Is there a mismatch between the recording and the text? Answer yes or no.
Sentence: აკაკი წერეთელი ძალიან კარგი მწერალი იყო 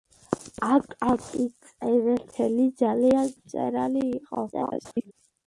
yes